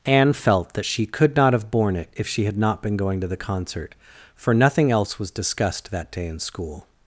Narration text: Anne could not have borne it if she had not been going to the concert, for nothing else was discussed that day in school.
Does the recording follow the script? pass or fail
fail